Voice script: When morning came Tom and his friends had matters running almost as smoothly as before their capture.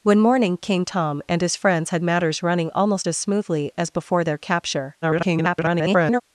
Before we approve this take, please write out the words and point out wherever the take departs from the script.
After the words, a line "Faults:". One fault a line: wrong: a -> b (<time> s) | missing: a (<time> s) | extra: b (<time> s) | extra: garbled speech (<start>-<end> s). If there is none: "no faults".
When morning came Tom and his friends had matters running almost as smoothly as before their capture. [garbled]
Faults:
extra: garbled speech (5.0-6.2 s)